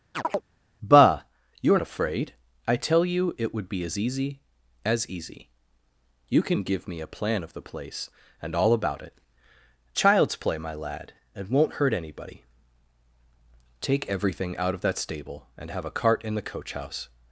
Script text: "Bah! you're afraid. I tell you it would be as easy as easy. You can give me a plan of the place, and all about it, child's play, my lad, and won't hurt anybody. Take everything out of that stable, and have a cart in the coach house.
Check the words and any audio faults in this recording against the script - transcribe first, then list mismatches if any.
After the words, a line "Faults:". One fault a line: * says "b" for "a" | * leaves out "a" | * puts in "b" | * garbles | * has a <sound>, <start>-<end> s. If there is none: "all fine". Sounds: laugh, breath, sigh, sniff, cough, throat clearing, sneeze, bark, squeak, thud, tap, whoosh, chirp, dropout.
"Bah! you're afraid. I tell you it would be as easy as easy. You can give me a plan of the place, and all about it, child's play, my lad, and won't hurt anybody. Take everything out of that stable, and have a cart in the coach house.
Faults:
* has a chirp, 0.1-0.4 s